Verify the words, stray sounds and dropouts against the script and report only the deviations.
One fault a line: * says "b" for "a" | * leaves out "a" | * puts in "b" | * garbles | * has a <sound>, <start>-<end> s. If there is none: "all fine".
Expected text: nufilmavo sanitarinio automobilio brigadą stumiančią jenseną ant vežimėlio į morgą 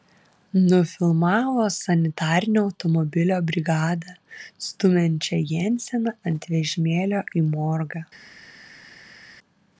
all fine